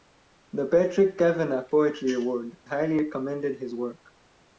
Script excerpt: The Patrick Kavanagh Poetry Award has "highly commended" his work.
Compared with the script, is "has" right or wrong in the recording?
wrong